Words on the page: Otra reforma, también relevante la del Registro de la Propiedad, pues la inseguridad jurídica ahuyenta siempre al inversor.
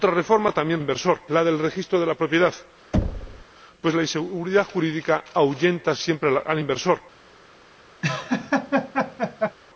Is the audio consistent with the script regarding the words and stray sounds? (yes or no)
no